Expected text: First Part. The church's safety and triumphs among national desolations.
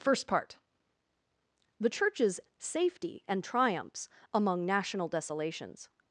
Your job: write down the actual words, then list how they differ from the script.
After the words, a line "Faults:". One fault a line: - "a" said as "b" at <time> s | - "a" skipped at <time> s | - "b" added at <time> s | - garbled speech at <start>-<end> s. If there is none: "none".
First Part. The church's safety and triumphs among national desolations.
Faults:
none